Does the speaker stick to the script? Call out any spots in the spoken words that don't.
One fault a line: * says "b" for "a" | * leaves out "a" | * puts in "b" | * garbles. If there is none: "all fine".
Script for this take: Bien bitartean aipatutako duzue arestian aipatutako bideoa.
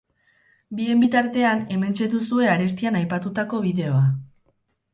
* says "hementxe" for "aipatutako"